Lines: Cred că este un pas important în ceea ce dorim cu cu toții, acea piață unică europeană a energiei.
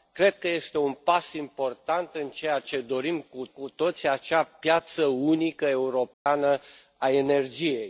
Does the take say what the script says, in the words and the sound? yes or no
no